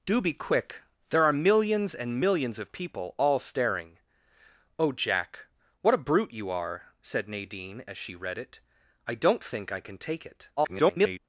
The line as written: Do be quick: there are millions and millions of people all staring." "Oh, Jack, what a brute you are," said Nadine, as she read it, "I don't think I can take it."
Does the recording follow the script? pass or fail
fail